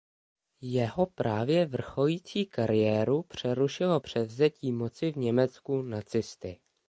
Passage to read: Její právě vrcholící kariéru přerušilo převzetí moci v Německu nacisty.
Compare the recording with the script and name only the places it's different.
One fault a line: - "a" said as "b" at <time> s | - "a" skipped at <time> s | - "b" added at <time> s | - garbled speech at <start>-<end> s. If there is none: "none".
- "Její" said as "Jeho" at 0.6 s